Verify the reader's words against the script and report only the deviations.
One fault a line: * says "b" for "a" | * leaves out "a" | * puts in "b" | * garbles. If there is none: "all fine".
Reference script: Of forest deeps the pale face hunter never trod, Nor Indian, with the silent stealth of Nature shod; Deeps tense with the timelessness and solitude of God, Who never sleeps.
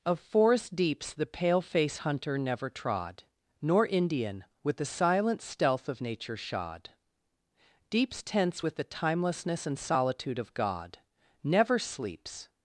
* leaves out "Who"